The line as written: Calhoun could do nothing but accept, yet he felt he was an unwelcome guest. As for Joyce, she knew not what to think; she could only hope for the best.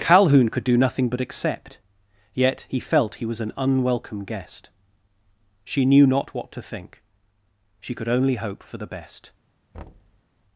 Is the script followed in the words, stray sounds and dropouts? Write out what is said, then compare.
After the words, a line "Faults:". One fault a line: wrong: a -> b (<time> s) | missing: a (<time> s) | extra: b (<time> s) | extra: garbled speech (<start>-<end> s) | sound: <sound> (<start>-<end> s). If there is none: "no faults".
Calhoun could do nothing but accept, yet he felt he was an unwelcome guest. She knew not what to think; she could only hope for the best.
Faults:
missing: As for Joyce (4.7 s)
sound: thud (9.7-10.2 s)